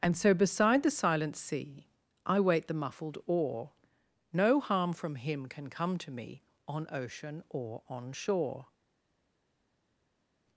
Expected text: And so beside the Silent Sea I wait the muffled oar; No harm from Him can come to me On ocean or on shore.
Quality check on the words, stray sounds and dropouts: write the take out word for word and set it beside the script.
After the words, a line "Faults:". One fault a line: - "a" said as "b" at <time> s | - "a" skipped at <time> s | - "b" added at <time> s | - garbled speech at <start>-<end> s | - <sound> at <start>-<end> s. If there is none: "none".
And so beside the Silent Sea I wait the muffled oar; No harm from Him can come to me On ocean or on shore.
Faults:
none